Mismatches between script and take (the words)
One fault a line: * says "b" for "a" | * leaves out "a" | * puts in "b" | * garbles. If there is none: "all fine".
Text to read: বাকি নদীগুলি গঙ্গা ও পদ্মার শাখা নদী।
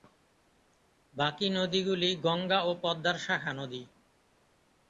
all fine